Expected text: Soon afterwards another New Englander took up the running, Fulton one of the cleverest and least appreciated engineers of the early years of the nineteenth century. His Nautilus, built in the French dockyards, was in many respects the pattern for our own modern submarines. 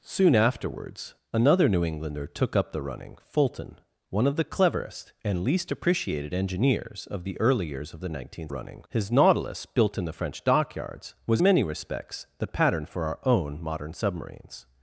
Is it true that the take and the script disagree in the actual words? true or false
true